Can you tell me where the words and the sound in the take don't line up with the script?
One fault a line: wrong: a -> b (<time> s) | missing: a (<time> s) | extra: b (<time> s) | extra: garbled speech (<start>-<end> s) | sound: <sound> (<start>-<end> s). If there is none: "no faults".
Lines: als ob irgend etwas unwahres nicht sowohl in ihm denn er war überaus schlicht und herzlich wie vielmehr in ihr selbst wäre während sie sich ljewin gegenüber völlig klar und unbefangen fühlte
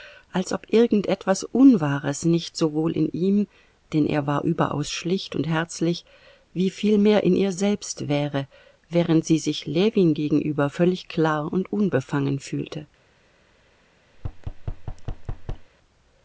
sound: thud (14.1-15.7 s)